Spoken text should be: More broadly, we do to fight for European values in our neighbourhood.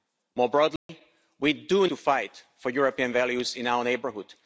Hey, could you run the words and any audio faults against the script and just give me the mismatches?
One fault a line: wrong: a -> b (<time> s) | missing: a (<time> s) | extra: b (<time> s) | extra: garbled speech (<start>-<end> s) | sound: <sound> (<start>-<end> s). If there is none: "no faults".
sound: dropout (0.8-0.9 s)